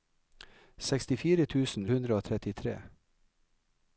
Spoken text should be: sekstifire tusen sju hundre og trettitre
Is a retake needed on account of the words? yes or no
yes